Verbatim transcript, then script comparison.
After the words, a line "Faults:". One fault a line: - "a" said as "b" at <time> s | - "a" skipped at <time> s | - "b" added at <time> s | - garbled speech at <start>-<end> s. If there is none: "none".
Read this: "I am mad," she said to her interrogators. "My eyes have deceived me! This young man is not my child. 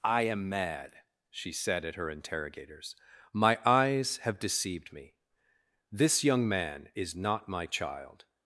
"I am mad," she said at her interrogators. "My eyes have deceived me! This young man is not my child.
Faults:
- "to" said as "at" at 1.9 s